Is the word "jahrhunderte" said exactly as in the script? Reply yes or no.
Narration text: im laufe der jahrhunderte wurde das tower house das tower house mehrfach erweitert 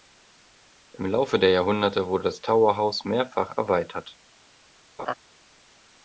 yes